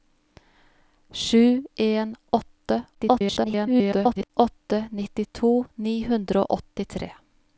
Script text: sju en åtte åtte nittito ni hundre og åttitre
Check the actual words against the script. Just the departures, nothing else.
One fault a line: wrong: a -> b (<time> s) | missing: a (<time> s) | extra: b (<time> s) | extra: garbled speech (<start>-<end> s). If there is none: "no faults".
extra: garbled speech (2.9-4.3 s)